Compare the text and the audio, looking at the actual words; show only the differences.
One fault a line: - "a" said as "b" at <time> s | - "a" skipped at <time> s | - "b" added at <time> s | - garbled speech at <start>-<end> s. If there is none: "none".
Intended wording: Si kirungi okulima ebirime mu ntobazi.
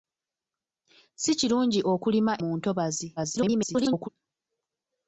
- "ebirime" skipped at 2.3 s
- garbled speech at 3.2-4.1 s